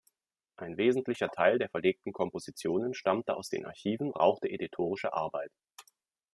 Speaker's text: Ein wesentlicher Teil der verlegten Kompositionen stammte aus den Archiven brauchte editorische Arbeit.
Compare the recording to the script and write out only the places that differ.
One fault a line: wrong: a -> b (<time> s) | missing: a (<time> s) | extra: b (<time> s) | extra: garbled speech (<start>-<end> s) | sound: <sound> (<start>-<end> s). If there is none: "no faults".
no faults